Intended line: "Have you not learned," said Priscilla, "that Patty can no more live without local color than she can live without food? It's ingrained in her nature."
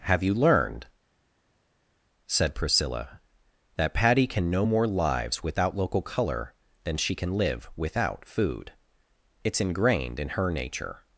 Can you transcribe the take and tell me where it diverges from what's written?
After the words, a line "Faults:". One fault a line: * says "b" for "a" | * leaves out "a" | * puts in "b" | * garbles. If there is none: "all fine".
"Have you learned," said Priscilla, "that Patty can no more lives without local color than she can live without food? It's ingrained in her nature."
Faults:
* leaves out "not"
* says "lives" for "live"